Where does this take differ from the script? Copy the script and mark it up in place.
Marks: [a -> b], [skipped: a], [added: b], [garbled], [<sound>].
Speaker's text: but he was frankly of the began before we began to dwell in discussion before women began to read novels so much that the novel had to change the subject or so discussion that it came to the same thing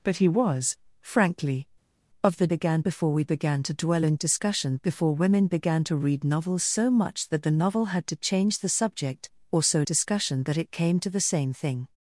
but he was frankly of the began before we began to dwell in discussion before women began to read novels so much that the novel had to change the subject or so discussion that it came to the same thing